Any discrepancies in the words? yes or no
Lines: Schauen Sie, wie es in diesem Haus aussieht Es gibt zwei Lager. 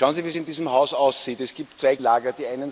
no